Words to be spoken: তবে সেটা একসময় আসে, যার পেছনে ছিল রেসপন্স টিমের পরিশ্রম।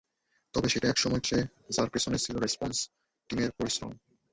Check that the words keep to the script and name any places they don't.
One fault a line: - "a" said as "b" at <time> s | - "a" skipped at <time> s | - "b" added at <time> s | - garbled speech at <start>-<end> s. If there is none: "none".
none